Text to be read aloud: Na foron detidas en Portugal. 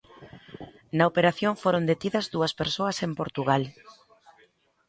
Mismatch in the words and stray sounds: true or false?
true